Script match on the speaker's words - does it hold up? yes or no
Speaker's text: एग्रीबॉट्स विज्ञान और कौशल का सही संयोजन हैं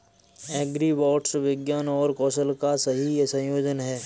yes